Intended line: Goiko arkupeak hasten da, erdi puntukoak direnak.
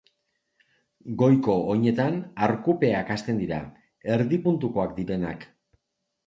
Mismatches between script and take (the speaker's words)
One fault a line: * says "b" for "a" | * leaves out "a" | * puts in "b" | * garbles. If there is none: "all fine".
* puts in "oinetan"
* says "dira" for "da"